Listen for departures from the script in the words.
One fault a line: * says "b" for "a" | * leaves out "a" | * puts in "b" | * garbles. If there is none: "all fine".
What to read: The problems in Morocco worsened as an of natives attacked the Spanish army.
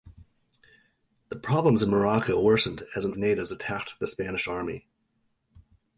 all fine